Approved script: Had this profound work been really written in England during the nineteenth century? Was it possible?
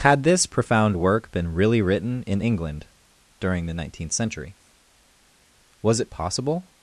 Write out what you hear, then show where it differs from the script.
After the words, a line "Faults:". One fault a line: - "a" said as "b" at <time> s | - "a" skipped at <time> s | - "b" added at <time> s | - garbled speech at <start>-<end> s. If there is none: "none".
Had this profound work been really written in England during the nineteenth century? Was it possible?
Faults:
none